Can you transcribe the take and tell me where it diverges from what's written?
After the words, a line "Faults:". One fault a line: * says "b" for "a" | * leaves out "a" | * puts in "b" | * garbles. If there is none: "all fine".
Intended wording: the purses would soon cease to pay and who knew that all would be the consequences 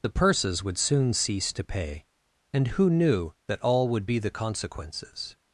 the purses would soon cease to pay and who knew that all would be the consequences
Faults:
all fine